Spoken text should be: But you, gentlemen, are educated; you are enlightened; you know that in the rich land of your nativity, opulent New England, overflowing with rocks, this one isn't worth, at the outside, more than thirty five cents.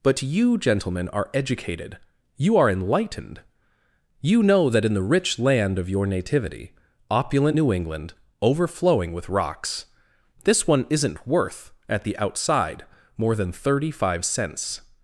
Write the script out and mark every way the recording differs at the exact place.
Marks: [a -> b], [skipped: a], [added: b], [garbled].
But you, gentlemen, are educated; you are enlightened; you know that in the rich land of your nativity, opulent New England, overflowing with rocks, this one isn't worth, at the outside, more than thirty five cents.